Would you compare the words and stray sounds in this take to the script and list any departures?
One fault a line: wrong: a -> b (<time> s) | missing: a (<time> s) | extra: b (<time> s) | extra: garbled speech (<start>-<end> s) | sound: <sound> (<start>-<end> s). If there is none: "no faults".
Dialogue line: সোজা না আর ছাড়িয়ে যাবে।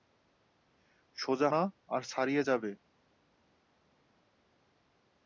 no faults